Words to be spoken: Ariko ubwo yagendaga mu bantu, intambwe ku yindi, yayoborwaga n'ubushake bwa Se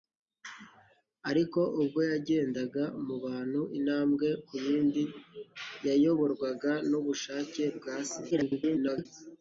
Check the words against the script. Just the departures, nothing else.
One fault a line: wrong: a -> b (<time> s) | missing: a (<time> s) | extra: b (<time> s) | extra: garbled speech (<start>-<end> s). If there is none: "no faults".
extra: garbled speech (8.3-9.1 s)